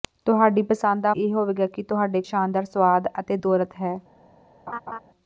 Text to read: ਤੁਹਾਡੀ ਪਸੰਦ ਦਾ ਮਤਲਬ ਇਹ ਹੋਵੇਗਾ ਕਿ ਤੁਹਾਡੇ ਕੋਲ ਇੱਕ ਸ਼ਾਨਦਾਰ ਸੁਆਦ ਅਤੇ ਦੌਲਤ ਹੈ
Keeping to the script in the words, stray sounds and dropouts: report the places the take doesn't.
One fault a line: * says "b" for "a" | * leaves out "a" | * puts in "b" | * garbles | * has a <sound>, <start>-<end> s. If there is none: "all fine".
* leaves out "ਮਤਲਬ"
* leaves out "ਕੋਲ ਇੱਕ"
* has a laugh, 4.7-5.0 s